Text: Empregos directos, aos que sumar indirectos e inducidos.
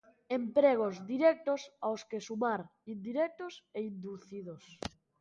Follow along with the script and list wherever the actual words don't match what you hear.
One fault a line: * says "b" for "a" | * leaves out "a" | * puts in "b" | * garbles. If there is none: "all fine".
all fine